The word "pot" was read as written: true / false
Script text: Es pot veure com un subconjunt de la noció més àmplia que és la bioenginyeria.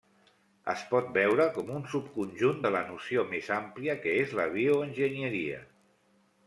true